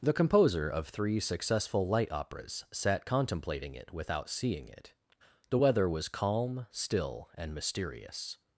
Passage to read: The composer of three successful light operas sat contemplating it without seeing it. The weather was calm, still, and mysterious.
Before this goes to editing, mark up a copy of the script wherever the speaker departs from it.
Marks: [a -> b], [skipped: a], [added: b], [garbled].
The composer of three successful light operas sat contemplating it without seeing it. The weather was calm, still, and mysterious.